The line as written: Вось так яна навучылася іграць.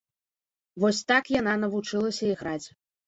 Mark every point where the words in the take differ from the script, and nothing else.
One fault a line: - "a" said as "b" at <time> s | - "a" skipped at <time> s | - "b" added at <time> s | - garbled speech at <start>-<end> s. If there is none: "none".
none